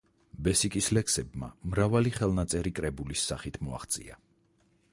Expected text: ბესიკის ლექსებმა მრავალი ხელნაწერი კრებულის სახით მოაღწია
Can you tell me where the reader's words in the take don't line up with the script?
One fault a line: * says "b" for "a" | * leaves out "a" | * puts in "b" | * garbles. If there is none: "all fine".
all fine